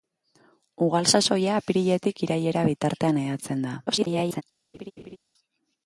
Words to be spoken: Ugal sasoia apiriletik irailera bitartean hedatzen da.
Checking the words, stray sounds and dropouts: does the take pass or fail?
fail